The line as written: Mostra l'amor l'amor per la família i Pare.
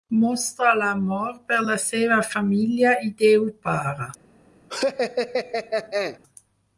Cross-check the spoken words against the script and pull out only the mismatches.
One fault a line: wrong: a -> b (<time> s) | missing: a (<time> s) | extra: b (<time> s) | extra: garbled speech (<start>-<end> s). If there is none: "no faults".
missing: l'amor (1.4 s)
extra: seva (1.9 s)
extra: Déu (3.2 s)